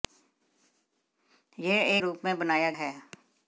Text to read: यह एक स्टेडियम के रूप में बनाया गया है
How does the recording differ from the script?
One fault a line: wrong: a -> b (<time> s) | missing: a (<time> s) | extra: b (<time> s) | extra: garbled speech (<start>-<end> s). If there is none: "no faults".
missing: एक स्टेडियम के (2.0 s)
missing: गया (2.7 s)